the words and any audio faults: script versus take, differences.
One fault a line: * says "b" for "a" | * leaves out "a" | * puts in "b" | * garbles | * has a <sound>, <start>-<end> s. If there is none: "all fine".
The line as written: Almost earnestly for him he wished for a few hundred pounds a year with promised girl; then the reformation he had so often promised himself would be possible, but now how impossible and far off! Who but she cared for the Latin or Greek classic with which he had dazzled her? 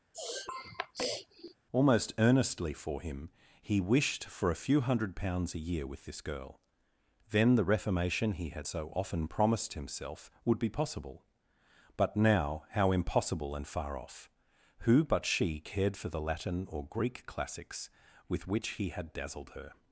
* has a sniff, 0.1-1.6 s
* says "this" for "promised"
* says "classics" for "classic"